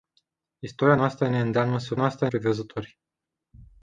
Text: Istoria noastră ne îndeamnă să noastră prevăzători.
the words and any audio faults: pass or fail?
pass